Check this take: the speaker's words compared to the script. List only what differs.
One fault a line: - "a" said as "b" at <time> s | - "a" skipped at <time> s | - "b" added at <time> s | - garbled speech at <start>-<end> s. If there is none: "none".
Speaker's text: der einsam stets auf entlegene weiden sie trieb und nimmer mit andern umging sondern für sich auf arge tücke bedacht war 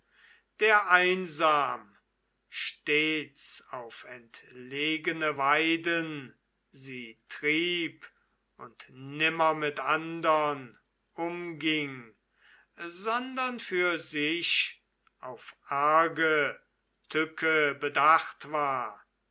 none